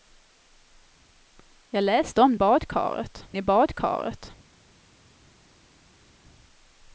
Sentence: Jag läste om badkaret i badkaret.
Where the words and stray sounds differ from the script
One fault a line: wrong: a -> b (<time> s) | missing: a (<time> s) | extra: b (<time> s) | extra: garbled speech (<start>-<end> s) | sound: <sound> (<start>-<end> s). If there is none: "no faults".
no faults